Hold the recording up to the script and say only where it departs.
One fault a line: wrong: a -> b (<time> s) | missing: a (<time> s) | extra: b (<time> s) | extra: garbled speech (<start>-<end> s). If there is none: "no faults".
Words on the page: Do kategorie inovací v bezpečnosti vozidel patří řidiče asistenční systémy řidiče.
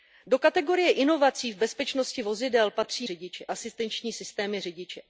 no faults